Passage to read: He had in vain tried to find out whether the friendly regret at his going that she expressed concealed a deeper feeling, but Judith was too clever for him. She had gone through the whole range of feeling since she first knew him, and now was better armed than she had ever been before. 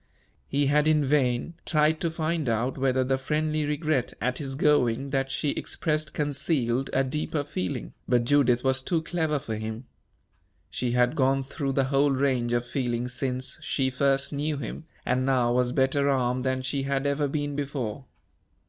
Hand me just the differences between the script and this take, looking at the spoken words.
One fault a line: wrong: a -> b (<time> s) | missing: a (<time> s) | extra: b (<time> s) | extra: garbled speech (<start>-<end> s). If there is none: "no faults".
no faults